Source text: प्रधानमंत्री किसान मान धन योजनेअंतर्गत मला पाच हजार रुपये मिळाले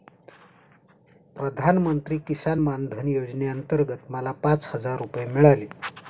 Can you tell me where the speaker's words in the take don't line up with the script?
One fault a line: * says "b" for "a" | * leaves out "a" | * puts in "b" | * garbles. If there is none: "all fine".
all fine